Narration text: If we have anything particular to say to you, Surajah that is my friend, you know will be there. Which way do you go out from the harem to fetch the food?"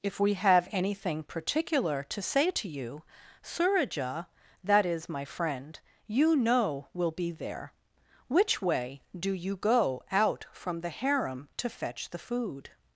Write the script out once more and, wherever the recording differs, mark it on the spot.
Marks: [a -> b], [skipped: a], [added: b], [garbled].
If we have anything particular to say to you, Surajah that is my friend, you know will be there. Which way do you go out from the harem to fetch the food?"